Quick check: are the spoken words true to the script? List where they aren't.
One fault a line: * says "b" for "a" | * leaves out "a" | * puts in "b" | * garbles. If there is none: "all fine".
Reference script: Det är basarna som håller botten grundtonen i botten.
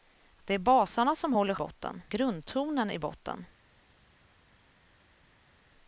all fine